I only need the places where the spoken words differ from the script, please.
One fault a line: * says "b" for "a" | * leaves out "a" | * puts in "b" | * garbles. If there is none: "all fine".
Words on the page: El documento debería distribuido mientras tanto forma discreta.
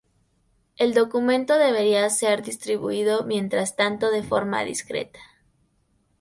* puts in "ser"
* puts in "de"